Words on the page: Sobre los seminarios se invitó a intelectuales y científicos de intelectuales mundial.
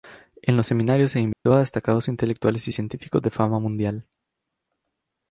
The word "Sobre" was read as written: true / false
false